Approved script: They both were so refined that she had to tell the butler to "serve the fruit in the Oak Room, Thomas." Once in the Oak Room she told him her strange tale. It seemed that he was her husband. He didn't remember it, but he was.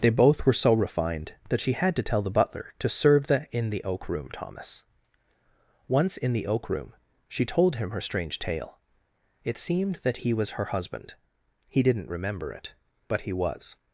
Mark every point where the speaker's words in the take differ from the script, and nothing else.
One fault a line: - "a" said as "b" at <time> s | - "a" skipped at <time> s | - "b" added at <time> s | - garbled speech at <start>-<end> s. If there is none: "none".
- "fruit" skipped at 3.5 s